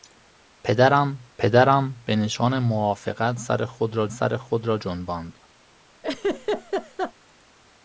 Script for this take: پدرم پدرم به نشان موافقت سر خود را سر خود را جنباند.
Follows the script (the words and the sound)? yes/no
no